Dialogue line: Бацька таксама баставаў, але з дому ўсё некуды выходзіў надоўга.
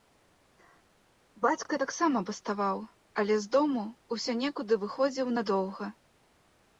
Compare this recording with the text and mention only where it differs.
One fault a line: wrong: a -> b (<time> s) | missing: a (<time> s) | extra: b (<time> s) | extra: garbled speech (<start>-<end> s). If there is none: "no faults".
no faults